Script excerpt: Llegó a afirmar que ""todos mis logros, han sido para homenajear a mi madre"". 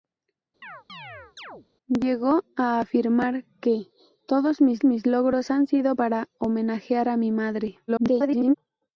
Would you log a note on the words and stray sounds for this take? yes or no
yes